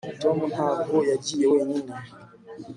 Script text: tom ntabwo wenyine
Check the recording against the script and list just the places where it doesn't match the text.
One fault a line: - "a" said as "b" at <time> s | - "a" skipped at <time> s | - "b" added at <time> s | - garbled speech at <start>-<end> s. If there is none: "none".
- "yagiye" added at 1.1 s